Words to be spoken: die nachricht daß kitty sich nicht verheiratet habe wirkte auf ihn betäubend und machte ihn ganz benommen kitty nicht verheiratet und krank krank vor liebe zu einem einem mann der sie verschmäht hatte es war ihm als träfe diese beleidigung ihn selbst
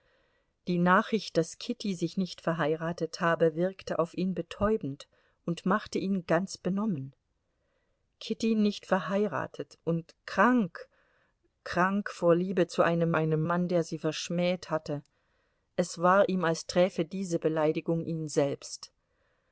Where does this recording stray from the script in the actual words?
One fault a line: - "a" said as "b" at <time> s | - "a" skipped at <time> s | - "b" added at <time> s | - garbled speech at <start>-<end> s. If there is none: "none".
none